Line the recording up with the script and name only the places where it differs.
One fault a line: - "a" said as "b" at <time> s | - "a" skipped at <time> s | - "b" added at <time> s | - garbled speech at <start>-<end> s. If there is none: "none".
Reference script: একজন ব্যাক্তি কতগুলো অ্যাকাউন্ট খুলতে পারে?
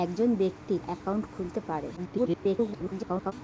- "কতগুলো" skipped at 0.8 s
- garbled speech at 2.0-3.3 s